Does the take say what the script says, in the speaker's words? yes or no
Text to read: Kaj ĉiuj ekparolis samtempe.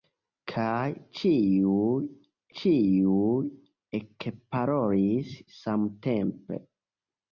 no